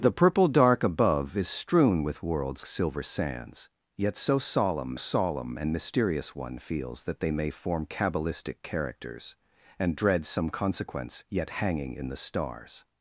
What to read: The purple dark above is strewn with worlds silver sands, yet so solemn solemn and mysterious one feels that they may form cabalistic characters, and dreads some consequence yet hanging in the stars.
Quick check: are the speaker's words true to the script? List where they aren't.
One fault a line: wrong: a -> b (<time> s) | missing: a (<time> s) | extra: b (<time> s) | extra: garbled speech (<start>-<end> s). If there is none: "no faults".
no faults